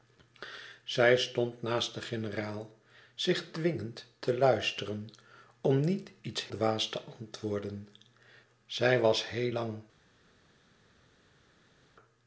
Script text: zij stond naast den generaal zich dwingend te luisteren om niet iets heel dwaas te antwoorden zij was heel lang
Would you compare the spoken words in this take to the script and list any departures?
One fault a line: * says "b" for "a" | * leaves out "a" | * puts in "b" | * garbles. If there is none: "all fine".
* leaves out "heel"